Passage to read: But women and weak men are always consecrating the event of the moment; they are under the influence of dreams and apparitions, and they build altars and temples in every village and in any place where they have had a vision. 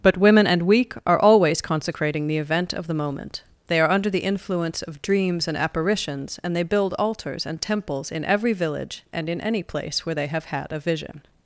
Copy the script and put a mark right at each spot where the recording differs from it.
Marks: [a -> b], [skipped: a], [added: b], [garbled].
But women and weak [skipped: men] are always consecrating the event of the moment; they are under the influence of dreams and apparitions, and they build altars and temples in every village and in any place where they have had a vision.